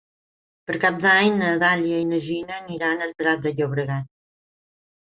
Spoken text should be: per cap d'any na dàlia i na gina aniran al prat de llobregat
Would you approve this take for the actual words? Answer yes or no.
yes